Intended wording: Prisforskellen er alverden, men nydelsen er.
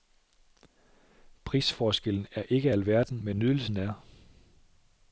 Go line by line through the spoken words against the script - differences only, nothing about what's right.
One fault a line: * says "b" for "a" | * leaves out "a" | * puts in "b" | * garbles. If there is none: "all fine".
* puts in "ikke"